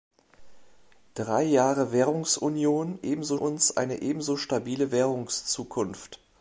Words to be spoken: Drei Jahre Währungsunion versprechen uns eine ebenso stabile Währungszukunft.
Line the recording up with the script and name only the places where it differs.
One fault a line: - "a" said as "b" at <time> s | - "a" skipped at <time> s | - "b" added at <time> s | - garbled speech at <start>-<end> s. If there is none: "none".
- "versprechen" said as "ebenso" at 3.0 s